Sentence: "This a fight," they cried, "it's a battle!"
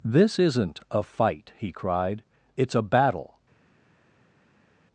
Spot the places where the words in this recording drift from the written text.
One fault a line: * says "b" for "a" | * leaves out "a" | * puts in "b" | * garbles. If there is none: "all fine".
* puts in "isn't"
* says "he" for "they"